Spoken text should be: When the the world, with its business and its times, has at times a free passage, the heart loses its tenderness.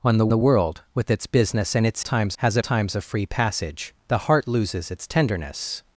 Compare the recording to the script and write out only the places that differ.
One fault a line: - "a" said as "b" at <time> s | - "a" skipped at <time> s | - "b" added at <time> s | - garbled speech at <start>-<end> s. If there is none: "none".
none